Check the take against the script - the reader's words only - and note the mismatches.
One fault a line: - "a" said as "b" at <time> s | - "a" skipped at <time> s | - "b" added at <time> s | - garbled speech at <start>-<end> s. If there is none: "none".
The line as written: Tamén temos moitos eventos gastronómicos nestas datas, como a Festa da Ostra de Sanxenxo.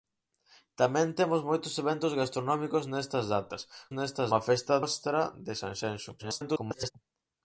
- "como" said as "nestas" at 4.0 s
- "da" skipped at 4.8 s
- garbled speech at 6.2-6.9 s